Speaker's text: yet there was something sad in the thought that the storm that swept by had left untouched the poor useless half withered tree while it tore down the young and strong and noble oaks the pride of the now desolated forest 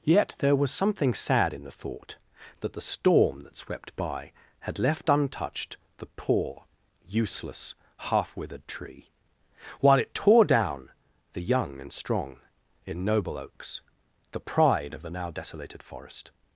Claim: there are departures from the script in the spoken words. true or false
true